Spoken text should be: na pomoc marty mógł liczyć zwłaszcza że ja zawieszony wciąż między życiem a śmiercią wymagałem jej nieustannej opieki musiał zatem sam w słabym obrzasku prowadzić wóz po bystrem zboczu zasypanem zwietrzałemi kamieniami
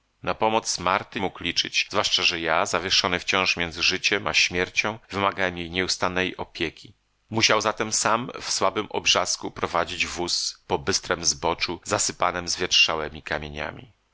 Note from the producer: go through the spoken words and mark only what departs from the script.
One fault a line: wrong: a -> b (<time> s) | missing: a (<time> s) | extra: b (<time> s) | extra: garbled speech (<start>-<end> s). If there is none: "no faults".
no faults